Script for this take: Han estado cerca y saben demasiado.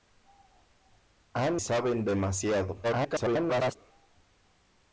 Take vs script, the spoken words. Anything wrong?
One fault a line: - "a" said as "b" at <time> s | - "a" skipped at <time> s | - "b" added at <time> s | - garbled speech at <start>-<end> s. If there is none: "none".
- "estado cerca y" skipped at 1.6 s
- garbled speech at 2.8-3.8 s